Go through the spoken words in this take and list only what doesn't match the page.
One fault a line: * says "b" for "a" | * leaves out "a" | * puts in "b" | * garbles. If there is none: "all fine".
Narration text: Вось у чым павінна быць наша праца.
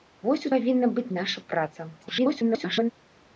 * leaves out "чым"
* garbles